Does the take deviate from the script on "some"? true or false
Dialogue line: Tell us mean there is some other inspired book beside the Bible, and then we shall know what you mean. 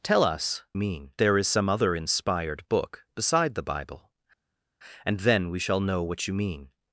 false